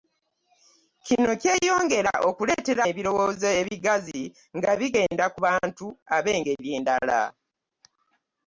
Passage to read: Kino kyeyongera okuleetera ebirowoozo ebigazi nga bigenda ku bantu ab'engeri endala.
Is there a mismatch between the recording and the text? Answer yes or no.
no